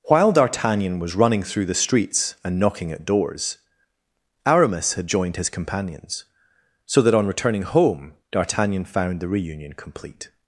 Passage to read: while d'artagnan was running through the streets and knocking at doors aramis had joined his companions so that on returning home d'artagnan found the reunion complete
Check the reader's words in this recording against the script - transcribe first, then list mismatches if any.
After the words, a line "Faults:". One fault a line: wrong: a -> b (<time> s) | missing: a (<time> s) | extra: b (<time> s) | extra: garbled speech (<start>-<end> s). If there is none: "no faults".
while d'artagnan was running through the streets and knocking at doors aramis had joined his companions so that on returning home d'artagnan found the reunion complete
Faults:
no faults